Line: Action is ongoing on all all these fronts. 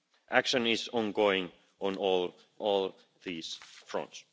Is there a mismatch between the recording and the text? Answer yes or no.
no